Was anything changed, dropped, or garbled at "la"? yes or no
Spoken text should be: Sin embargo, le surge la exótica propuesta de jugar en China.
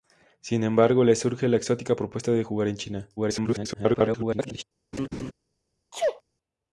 no